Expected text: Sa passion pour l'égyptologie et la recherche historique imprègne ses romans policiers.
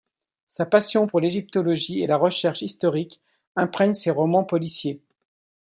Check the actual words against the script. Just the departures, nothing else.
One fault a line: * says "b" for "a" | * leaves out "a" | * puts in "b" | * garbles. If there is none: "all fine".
all fine